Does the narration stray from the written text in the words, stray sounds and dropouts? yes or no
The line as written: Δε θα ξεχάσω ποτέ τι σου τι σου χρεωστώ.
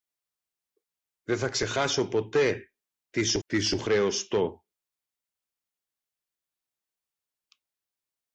no